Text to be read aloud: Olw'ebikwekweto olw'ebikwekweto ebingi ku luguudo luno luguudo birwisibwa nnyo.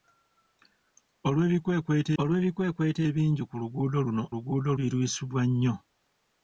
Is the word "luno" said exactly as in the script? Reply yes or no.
yes